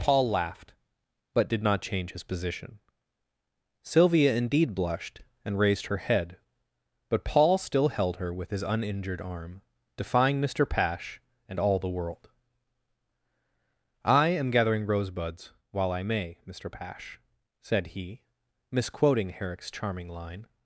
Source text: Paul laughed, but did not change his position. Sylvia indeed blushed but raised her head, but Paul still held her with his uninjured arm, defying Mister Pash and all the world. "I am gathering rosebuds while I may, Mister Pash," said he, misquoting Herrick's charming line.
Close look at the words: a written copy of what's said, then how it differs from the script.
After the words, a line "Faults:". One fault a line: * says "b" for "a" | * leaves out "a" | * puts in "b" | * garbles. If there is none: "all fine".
Paul laughed, but did not change his position. Sylvia indeed blushed and raised her head, but Paul still held her with his uninjured arm, defying Mister Pash and all the world. "I am gathering rosebuds while I may, Mister Pash," said he, misquoting Herrick's charming line.
Faults:
* says "and" for "but"